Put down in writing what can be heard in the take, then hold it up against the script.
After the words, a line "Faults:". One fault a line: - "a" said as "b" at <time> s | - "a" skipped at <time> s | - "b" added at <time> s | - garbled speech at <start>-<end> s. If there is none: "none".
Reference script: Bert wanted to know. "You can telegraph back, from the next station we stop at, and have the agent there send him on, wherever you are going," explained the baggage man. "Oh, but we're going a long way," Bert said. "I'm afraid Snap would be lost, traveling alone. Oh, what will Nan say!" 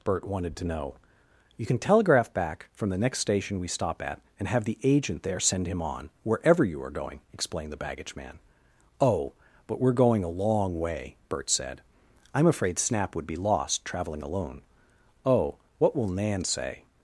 Bert wanted to know. "You can telegraph back, from the next station we stop at, and have the agent there send him on, wherever you are going," explained the baggage man. "Oh, but we're going a long way," Bert said. "I'm afraid Snap would be lost, traveling alone. Oh, what will Nan say!"
Faults:
none